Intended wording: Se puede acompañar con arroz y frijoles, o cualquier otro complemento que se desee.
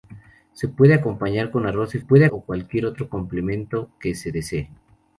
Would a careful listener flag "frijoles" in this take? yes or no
yes